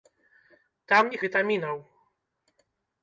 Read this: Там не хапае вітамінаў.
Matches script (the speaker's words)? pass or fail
fail